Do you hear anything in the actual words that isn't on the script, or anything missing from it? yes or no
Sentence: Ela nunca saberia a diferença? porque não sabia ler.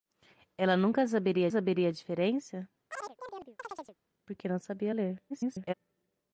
yes